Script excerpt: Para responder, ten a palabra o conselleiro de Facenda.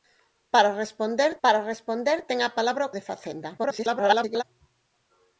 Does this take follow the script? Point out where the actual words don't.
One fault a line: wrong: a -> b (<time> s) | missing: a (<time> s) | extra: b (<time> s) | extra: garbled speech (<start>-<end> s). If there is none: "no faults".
extra: para responder (1.4 s)
missing: conselleiro (2.9 s)
extra: garbled speech (3.6-4.4 s)